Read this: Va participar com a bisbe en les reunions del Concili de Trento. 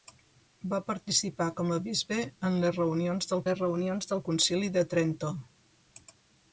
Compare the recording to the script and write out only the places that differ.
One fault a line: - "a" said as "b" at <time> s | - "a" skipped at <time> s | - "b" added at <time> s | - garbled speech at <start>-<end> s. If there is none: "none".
- "les reunions del" added at 3.5 s